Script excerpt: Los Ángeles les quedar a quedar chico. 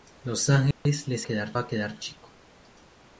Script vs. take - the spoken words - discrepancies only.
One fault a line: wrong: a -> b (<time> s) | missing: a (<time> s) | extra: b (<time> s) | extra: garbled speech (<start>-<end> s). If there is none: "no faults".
no faults